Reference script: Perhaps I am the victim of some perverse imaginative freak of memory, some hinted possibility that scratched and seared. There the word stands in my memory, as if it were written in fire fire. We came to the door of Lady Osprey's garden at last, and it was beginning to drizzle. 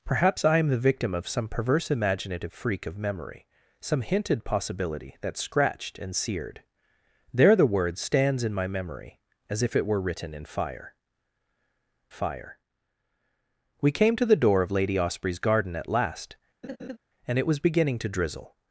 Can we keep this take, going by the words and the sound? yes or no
no